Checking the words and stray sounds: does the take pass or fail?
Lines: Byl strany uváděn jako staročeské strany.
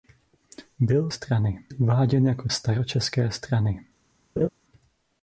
fail